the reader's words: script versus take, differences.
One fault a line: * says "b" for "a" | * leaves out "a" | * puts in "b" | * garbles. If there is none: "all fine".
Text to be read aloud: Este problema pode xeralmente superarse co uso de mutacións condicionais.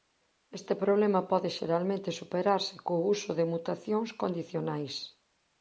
all fine